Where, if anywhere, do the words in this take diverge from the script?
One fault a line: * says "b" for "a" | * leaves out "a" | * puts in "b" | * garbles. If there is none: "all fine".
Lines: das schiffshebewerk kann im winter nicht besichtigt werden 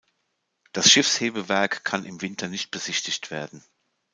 all fine